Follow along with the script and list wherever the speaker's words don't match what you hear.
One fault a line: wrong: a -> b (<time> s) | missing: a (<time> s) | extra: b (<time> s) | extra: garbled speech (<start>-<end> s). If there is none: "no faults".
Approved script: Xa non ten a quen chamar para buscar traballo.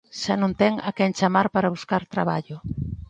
no faults